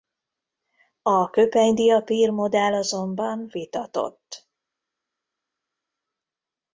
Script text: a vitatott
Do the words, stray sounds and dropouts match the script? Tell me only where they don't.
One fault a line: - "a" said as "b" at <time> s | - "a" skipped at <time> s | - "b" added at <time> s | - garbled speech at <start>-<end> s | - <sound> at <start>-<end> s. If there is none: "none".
- "köpenydiapír modell azonban" added at 1.3 s